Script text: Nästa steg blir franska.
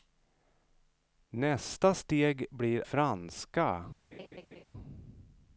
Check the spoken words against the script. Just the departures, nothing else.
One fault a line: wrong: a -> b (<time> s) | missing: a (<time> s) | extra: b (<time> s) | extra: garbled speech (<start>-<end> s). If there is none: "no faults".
no faults